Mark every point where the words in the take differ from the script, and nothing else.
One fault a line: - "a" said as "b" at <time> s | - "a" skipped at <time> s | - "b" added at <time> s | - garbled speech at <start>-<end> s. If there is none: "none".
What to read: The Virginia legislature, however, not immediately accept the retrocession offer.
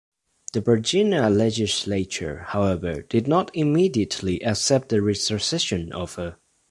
- "did" added at 3.1 s